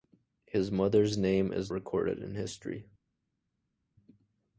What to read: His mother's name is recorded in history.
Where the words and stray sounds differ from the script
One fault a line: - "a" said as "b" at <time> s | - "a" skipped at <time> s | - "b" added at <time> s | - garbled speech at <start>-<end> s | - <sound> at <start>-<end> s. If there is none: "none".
none